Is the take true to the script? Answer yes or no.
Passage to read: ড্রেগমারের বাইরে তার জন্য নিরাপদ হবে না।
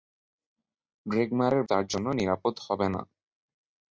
no